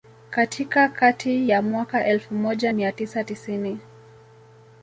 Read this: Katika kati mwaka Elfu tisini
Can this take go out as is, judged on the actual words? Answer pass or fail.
fail